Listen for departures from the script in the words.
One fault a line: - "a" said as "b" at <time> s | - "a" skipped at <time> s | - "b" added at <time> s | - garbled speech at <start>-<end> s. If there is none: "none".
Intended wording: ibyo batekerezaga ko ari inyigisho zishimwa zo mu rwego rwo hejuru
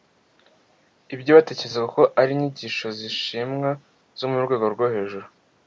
none